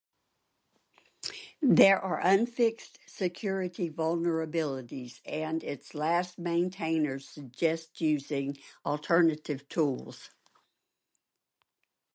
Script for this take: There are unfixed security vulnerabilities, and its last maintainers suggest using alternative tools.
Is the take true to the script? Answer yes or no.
yes